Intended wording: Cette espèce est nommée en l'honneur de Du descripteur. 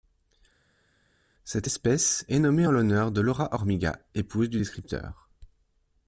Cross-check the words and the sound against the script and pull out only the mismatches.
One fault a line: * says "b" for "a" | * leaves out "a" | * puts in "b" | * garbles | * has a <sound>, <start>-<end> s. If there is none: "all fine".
* puts in "Laura Hormiga épouse"